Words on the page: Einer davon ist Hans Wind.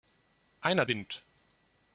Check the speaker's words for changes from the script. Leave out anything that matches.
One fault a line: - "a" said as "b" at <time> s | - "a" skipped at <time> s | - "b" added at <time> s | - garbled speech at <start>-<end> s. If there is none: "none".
- "davon ist Hans" skipped at 0.9 s